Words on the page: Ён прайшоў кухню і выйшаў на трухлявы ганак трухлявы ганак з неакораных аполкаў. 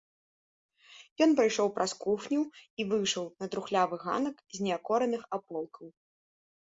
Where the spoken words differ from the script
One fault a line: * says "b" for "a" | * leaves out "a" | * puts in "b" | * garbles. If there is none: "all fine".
* puts in "праз"
* leaves out "трухлявы ганак"